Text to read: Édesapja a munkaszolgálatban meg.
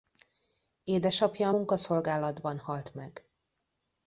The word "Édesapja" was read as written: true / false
true